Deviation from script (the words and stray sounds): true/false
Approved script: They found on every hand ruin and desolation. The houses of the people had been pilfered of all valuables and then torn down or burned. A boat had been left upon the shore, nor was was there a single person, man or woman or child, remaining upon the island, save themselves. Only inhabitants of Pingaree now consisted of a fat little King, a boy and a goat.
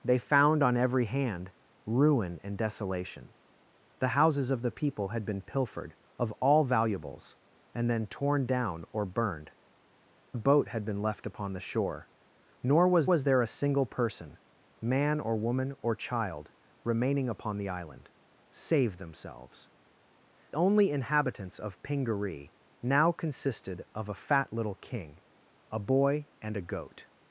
false